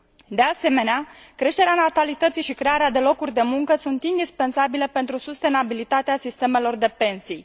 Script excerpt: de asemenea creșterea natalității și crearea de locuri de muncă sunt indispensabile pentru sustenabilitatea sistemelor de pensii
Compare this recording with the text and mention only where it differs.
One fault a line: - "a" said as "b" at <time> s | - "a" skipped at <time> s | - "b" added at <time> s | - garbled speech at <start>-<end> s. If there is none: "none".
none